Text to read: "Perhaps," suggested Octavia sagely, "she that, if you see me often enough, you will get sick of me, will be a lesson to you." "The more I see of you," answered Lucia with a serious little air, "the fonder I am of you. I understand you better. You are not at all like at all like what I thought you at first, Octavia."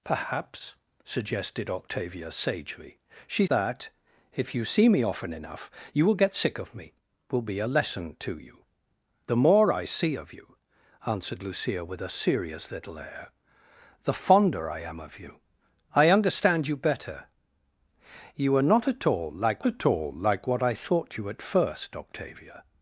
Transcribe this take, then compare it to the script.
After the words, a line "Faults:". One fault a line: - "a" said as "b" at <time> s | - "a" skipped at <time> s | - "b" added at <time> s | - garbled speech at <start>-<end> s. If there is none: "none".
"Perhaps," suggested Octavia sagely, "she that, if you see me often enough, you will get sick of me, will be a lesson to you." "The more I see of you," answered Lucia with a serious little air, "the fonder I am of you. I understand you better. You are not at all like at all like what I thought you at first, Octavia."
Faults:
none